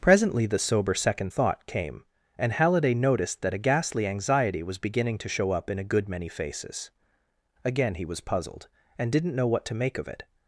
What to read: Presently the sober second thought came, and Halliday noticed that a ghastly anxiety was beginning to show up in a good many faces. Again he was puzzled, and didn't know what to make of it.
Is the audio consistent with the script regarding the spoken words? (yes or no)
yes